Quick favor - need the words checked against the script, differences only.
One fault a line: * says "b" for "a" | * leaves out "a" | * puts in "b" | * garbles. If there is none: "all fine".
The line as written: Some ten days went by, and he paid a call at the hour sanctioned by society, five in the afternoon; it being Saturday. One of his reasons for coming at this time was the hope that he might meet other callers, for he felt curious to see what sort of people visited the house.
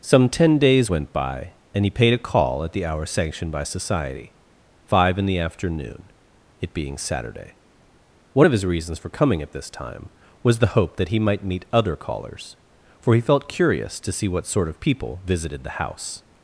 all fine